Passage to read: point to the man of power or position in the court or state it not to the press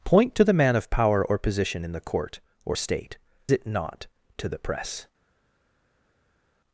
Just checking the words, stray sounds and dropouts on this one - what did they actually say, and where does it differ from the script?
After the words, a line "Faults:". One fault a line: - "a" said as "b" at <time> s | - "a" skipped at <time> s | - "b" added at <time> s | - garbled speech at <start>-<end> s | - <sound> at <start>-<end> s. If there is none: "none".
point to the man of power or position in the court or state it not to the press
Faults:
none